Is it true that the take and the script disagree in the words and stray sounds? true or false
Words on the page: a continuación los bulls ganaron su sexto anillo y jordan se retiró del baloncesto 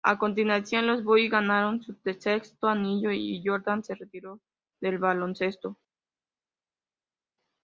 false